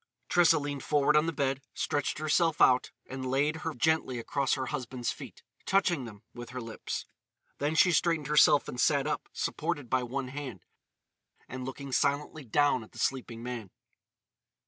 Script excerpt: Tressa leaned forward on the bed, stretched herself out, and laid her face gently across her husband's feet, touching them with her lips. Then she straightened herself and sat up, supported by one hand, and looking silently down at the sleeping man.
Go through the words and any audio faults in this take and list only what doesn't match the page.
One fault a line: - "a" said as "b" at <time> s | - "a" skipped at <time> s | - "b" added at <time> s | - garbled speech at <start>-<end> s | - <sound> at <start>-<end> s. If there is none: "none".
- "face" skipped at 3.7 s